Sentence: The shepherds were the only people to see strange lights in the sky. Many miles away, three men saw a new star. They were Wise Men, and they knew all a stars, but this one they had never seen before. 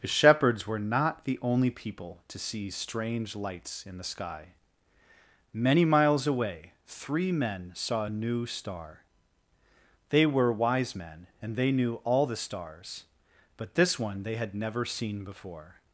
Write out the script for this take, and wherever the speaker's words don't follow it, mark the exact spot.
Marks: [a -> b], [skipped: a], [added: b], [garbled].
The shepherds were [added: not] the only people to see strange lights in the sky. Many miles away, three men saw a new star. They were Wise Men, and they knew all [a -> the] stars, but this one they had never seen before.